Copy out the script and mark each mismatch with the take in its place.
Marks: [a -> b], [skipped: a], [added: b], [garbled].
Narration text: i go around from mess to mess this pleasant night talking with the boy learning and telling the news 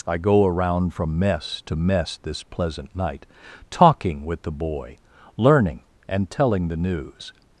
i go around from mess to mess this pleasant night talking with the boy learning and telling the news